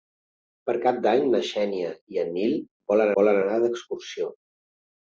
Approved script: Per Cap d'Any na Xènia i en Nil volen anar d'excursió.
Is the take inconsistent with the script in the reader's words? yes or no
yes